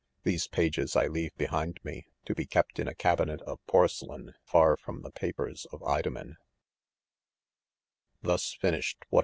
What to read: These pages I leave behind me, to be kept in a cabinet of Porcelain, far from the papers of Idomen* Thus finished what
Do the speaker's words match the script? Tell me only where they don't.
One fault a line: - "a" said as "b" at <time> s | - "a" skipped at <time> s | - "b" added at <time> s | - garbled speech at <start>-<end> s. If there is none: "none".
none